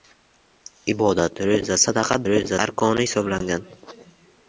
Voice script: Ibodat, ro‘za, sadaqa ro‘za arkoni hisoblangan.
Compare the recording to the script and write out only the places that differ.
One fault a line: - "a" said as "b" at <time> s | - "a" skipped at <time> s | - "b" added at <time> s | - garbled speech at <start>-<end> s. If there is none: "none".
none